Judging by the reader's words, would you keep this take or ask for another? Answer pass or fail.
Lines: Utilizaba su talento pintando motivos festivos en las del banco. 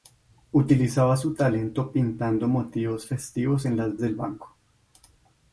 pass